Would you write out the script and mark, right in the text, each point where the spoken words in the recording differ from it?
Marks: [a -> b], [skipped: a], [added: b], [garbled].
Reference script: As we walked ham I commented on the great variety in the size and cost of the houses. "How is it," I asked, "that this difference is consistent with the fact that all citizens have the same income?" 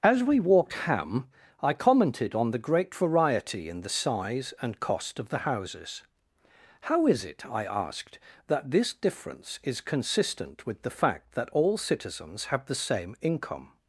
As we walked ham I commented on the great variety in the size and cost of the houses. "How is it," I asked, "that this difference is consistent with the fact that all citizens have the same income?"